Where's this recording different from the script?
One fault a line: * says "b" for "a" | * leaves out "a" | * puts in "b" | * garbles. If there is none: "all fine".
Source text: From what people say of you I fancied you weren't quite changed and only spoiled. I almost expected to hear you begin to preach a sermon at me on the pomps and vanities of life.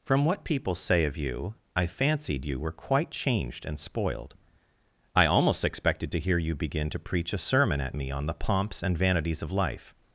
* says "were" for "weren't"
* leaves out "only"